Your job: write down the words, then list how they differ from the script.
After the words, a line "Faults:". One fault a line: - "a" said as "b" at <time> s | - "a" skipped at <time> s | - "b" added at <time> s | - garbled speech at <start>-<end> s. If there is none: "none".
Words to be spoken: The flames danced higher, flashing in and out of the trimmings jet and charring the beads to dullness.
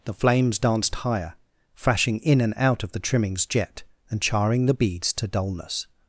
The flames danced higher, flashing in and out of the trimmings jet and charring the beads to dullness.
Faults:
none